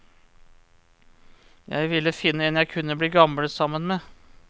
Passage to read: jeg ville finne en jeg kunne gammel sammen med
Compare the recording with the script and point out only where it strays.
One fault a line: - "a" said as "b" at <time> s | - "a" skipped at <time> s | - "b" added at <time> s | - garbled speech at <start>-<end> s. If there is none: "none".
- "bli" added at 3.0 s